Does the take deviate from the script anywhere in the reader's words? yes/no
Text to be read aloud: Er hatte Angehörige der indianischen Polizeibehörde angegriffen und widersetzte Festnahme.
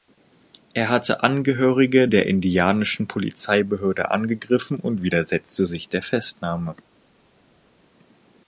yes